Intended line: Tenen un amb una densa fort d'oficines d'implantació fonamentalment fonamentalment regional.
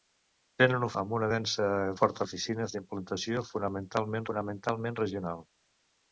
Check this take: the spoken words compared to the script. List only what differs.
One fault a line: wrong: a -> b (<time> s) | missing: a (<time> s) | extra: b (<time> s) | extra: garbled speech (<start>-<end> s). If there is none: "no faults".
no faults